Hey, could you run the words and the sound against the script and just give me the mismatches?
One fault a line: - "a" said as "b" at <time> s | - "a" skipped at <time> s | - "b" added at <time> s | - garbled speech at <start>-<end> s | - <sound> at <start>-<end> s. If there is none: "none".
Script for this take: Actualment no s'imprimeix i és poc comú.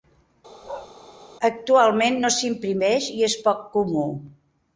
- bark at 0.6-0.9 s